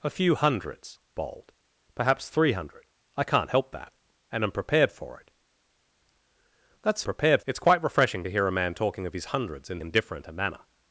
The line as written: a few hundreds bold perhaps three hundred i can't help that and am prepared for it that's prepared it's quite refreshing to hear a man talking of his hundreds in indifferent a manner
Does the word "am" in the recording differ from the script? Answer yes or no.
no